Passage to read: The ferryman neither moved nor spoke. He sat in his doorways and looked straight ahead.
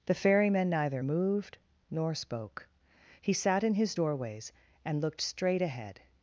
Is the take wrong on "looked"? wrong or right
right